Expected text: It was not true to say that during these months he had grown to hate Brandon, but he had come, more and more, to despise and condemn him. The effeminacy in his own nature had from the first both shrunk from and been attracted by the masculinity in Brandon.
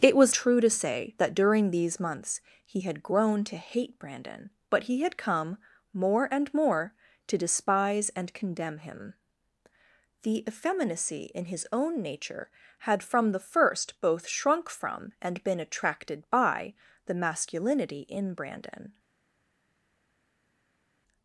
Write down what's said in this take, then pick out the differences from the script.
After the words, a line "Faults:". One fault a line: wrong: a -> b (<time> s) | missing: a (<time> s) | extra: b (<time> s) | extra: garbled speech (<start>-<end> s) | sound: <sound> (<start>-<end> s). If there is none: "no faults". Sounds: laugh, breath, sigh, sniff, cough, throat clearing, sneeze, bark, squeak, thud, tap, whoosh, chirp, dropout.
It was true to say that during these months he had grown to hate Brandon, but he had come, more and more, to despise and condemn him. The effeminacy in his own nature had from the first both shrunk from and been attracted by the masculinity in Brandon.
Faults:
missing: not (0.3 s)